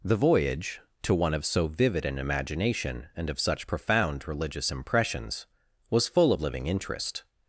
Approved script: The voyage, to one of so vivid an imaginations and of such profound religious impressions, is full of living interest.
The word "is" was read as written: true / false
false